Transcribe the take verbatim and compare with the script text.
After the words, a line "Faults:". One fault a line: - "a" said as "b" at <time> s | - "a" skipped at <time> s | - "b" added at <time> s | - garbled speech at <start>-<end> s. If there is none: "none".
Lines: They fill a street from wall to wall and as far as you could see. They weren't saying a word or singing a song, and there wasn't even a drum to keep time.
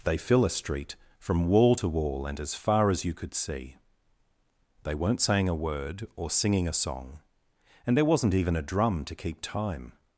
They fill a street from wall to wall and as far as you could see. They weren't saying a word or singing a song, and there wasn't even a drum to keep time.
Faults:
none